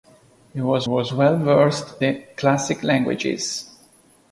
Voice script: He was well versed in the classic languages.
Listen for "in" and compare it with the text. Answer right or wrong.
wrong